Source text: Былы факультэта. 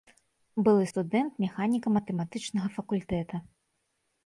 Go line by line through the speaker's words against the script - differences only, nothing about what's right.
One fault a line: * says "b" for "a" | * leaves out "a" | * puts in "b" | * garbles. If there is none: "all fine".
* puts in "студэнт механіка матэматычнага"